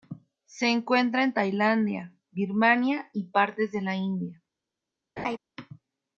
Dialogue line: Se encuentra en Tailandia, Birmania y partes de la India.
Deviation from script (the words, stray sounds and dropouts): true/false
true